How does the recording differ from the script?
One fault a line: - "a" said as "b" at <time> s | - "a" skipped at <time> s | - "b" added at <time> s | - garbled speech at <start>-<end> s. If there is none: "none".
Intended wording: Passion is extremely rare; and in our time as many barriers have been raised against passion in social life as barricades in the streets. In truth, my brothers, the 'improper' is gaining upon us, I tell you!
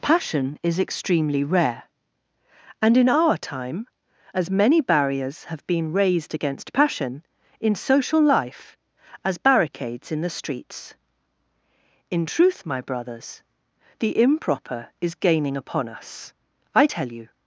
none